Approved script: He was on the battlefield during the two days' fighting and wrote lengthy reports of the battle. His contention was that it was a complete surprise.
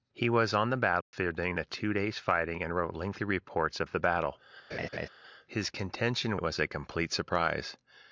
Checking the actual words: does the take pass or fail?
fail